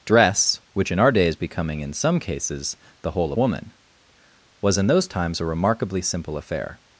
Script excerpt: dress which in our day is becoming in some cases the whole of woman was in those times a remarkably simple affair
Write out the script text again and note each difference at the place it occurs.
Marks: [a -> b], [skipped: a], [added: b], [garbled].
dress which in our day is becoming in some cases the whole [skipped: of] woman was in those times a remarkably simple affair